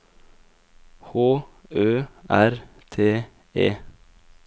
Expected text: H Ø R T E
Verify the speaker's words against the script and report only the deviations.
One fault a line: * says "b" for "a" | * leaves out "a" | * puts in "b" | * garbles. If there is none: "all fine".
all fine